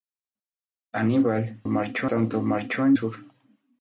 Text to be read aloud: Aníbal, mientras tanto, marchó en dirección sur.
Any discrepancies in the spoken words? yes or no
yes